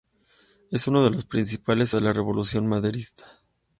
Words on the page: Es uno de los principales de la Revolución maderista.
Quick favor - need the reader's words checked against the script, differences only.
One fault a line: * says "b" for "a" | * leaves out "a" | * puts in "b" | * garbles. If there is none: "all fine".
all fine